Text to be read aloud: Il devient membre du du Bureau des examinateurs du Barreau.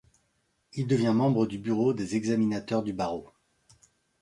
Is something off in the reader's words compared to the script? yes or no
yes